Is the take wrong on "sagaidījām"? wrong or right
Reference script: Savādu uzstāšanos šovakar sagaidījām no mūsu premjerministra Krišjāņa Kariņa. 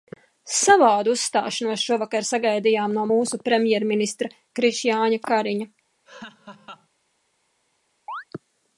right